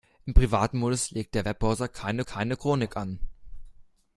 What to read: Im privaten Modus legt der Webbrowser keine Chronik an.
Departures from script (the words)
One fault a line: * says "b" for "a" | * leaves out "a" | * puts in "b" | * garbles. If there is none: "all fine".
* puts in "keine"